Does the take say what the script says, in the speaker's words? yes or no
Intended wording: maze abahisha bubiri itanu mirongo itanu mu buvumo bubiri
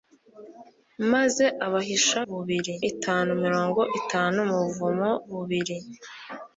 yes